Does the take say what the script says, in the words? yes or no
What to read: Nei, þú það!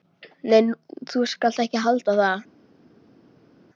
no